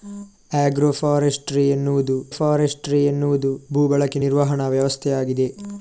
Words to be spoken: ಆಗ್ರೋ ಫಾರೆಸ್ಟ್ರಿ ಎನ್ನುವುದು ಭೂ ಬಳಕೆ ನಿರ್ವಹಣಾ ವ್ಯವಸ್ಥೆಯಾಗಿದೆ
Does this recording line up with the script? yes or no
no